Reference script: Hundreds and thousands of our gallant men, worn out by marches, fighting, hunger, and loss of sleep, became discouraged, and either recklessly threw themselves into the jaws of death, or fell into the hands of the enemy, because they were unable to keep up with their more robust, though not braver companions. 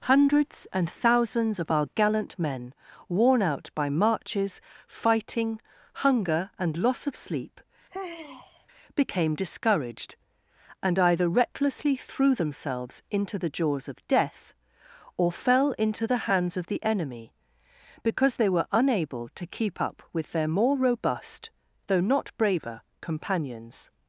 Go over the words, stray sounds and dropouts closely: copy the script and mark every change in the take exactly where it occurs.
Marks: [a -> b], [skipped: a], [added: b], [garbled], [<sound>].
Hundreds and thousands of our gallant men, worn out by marches, fighting, hunger, and loss of sleep, [sigh] became discouraged, and either recklessly threw themselves into the jaws of death, or fell into the hands of the enemy, because they were unable to keep up with their more robust, though not braver companions.